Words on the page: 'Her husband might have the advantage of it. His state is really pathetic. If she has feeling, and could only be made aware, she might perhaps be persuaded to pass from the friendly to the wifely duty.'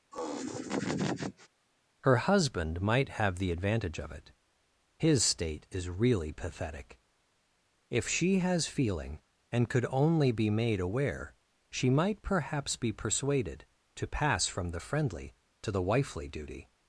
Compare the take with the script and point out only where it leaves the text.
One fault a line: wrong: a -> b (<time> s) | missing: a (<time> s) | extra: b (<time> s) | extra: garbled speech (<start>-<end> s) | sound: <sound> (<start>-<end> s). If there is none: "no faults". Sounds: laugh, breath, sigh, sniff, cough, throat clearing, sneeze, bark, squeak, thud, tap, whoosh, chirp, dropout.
sound: laugh (0.1-1.5 s)